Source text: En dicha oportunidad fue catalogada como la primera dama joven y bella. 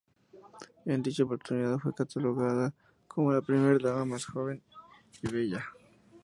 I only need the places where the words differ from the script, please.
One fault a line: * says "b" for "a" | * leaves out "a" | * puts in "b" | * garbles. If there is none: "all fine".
* puts in "más"